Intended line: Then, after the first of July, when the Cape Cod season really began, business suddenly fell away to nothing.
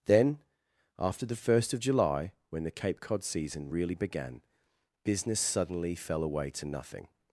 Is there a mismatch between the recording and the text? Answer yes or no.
no